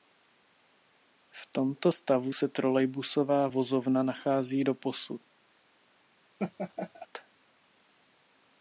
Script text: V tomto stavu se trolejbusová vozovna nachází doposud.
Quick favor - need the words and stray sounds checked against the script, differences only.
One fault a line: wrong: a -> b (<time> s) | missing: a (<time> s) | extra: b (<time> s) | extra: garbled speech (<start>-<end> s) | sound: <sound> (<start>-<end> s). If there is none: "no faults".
sound: laugh (6.4-7.1 s)